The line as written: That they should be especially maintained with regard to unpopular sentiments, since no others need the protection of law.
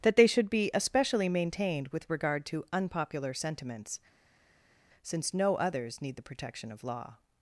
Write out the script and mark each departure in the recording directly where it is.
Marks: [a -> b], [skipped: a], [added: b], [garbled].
That they should be especially maintained with regard to unpopular sentiments, since no others need the protection of law.